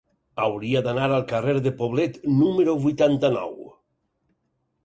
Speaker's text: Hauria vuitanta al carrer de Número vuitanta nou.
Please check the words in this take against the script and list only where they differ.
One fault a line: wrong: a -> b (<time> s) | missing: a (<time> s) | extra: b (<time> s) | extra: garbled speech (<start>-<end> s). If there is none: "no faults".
wrong: vuitanta -> d'anar (0.9 s)
extra: Poblet (1.8 s)